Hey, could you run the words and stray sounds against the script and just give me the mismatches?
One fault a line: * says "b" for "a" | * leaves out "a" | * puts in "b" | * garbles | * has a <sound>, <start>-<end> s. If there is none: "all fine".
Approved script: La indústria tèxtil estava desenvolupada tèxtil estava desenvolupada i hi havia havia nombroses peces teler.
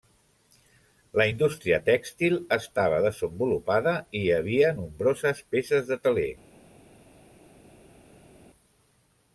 * leaves out "tèxtil estava desenvolupada"
* leaves out "havia"
* puts in "de"